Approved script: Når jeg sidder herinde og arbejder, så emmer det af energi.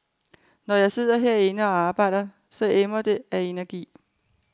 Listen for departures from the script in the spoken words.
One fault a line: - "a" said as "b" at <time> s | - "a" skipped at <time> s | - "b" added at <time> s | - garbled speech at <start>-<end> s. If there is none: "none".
none